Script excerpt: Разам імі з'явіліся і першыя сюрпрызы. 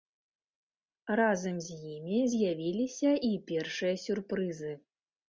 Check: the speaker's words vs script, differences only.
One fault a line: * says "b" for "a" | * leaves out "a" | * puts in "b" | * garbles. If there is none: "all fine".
* puts in "з"